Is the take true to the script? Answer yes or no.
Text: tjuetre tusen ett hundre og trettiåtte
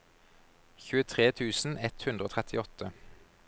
yes